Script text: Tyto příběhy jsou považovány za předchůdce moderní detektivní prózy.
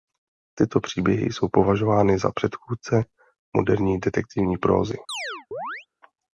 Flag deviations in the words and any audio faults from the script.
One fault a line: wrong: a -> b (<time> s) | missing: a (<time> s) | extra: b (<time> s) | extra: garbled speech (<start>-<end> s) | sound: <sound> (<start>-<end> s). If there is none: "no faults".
sound: chirp (5.1-5.9 s)